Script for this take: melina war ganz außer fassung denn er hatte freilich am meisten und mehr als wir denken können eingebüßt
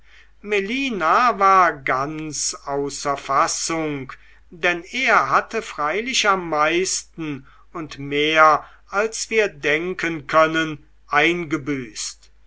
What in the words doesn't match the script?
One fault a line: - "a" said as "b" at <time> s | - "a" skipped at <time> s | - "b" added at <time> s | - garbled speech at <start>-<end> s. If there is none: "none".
none